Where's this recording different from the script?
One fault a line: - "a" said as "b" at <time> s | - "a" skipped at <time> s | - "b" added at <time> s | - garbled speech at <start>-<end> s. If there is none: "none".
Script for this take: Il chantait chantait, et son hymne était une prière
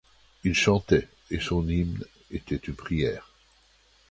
- "chantait" skipped at 1.1 s